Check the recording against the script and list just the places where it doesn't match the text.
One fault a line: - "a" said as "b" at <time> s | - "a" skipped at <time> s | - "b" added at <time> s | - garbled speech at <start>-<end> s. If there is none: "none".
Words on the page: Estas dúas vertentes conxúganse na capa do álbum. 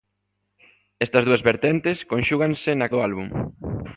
- "capa" skipped at 2.9 s